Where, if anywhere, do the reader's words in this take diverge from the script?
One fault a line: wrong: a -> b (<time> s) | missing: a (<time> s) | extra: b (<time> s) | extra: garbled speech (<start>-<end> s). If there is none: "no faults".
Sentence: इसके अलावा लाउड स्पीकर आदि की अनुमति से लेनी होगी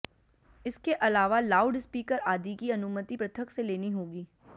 extra: पृथक (3.1 s)